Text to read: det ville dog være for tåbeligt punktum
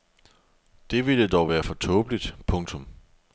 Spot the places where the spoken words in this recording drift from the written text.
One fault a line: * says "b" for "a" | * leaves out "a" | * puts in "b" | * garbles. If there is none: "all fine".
all fine